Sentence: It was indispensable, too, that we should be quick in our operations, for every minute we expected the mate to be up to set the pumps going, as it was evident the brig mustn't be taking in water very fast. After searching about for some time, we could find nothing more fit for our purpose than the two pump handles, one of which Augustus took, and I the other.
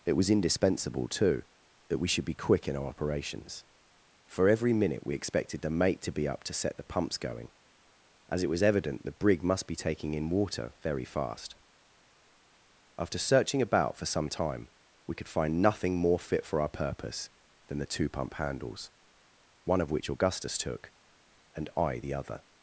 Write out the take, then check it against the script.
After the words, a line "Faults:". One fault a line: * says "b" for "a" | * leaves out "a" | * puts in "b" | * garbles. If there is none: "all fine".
It was indispensable, too, that we should be quick in our operations, for every minute we expected the mate to be up to set the pumps going, as it was evident the brig must be taking in water very fast. After searching about for some time, we could find nothing more fit for our purpose than the two pump handles, one of which Augustus took, and I the other.
Faults:
* says "must" for "mustn't"